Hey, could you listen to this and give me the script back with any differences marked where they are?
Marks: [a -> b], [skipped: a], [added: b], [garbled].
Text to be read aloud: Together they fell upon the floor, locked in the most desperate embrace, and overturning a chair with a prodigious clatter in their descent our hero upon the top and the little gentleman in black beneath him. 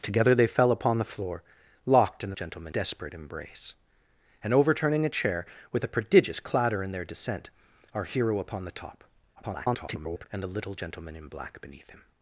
Together they fell upon the floor, locked in the [most -> gentleman] desperate embrace, and overturning a chair with a prodigious clatter in their descent our hero upon the top [garbled] and the little gentleman in black beneath him.